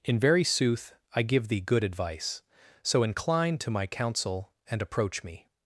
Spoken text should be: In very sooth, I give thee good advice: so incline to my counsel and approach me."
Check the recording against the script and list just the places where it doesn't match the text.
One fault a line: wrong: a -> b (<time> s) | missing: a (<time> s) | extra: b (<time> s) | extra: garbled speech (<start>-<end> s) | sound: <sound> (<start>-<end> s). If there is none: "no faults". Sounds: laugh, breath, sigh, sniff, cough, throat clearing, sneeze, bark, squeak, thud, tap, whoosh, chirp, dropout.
no faults